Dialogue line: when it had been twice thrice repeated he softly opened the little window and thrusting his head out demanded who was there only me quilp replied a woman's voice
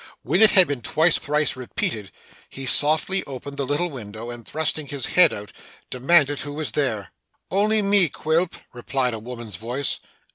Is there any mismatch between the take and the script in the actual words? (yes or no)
no